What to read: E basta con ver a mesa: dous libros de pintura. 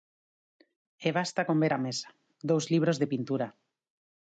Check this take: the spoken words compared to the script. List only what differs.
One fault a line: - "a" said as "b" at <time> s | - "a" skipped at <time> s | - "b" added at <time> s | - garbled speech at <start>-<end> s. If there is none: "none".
none